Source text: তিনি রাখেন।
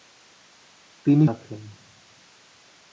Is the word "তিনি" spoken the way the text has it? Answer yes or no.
yes